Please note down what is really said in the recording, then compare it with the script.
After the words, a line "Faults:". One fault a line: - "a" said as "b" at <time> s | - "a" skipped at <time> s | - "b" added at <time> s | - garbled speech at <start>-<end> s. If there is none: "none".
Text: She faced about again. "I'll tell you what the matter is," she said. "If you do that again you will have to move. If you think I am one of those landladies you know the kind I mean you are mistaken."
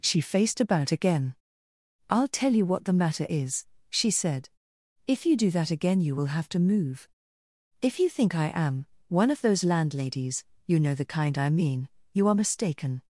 She faced about again. "I'll tell you what the matter is," she said. "If you do that again you will have to move. If you think I am one of those landladies you know the kind I mean you are mistaken."
Faults:
none